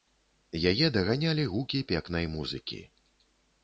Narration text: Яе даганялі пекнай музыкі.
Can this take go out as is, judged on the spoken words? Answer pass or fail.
fail